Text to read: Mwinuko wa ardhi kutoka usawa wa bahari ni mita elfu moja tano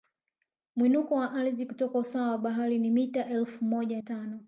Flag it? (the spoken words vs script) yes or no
no